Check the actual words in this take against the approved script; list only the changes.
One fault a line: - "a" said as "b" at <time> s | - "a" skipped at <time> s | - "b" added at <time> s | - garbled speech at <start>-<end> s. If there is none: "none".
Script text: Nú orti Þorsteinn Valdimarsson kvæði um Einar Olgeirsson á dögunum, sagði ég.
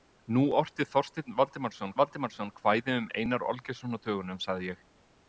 - "Valdimarsson" added at 2.0 s